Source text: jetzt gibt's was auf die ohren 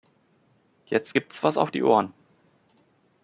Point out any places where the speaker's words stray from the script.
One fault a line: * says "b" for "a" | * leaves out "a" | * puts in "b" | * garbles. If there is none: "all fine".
all fine